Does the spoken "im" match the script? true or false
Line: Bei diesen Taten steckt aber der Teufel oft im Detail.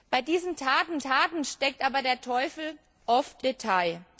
false